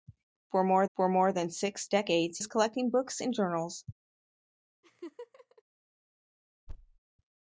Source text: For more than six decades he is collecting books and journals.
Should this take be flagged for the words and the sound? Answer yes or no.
yes